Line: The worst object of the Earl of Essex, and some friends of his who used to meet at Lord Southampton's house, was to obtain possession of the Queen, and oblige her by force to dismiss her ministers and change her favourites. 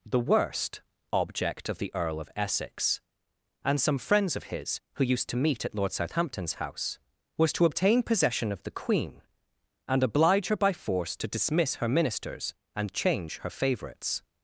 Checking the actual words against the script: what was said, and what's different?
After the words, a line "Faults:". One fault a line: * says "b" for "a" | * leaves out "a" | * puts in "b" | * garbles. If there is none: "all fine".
The worst object of the Earl of Essex, and some friends of his who used to meet at Lord Southampton's house, was to obtain possession of the Queen, and oblige her by force to dismiss her ministers and change her favourites.
Faults:
all fine